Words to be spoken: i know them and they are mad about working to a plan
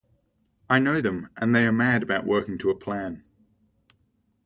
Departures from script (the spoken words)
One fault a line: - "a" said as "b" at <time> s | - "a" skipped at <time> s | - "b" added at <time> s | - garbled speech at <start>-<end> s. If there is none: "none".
none